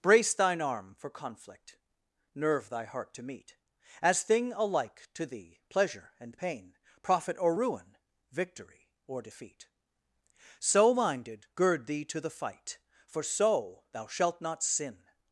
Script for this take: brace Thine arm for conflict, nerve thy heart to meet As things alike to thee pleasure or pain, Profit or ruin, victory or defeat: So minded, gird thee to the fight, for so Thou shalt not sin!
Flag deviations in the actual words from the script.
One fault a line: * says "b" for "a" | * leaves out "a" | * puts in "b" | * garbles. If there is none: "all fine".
* says "thing" for "things"
* says "and" for "or"